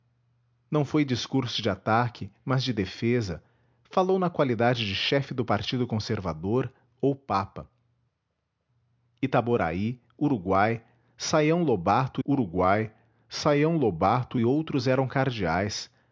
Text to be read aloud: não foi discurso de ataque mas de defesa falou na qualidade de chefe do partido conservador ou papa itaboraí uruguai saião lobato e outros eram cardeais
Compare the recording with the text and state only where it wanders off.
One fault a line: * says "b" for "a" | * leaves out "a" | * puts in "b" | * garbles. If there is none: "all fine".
* puts in "uruguai saião lobato"